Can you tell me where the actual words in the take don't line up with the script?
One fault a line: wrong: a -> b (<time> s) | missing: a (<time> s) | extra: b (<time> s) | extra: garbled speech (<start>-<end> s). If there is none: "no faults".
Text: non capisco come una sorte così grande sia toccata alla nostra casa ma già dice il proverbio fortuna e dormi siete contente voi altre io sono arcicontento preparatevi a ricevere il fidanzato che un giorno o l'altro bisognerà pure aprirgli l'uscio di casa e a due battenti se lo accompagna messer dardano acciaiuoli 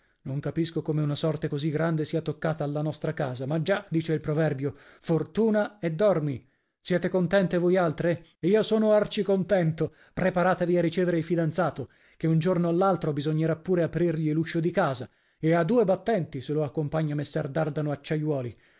no faults